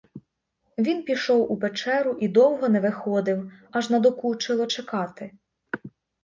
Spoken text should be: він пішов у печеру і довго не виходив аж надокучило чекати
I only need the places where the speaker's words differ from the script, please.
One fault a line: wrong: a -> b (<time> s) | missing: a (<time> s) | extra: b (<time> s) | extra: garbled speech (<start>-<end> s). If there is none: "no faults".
no faults